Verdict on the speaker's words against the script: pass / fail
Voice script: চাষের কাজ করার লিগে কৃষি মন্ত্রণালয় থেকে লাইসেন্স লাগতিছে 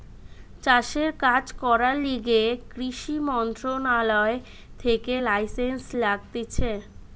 pass